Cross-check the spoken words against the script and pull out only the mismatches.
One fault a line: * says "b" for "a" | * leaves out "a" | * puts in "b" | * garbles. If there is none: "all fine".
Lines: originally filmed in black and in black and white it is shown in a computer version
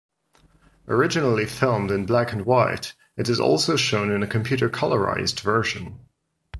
* leaves out "in black and"
* puts in "also"
* puts in "colorized"